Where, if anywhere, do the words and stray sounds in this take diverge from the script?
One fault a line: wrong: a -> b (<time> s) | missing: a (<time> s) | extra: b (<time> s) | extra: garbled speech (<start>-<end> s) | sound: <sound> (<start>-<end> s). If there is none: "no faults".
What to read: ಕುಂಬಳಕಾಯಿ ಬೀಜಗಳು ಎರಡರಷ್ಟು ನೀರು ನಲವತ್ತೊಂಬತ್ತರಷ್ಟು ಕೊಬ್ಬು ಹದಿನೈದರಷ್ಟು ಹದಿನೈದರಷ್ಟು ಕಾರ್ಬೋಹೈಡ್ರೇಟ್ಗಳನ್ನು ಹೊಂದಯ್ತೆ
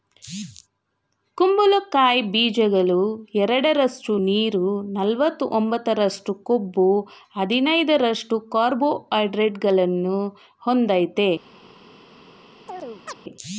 missing: ಹದಿನೈದರಷ್ಟು (8.4 s)
sound: chirp (12.7-13.2 s)